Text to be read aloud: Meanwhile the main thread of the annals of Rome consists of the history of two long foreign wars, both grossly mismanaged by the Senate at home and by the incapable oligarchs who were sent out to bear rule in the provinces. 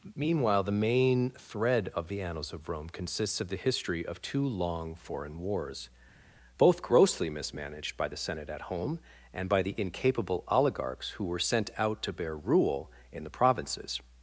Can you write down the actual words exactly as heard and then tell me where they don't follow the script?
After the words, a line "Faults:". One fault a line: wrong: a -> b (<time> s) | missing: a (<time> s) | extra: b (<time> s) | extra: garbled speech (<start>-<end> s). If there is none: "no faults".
Meanwhile the main thread of the annals of Rome consists of the history of two long foreign wars, both grossly mismanaged by the Senate at home and by the incapable oligarchs who were sent out to bear rule in the provinces.
Faults:
no faults